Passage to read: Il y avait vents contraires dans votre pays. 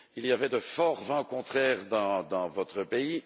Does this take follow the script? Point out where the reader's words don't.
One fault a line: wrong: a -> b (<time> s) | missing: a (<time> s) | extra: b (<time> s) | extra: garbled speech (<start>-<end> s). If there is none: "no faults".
extra: de forts (0.5 s)